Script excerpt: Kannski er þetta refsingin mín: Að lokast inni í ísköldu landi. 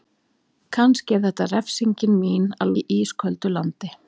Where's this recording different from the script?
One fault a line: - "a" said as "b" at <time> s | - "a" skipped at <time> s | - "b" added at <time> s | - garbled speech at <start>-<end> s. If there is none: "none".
- "lokast inni" skipped at 2.8 s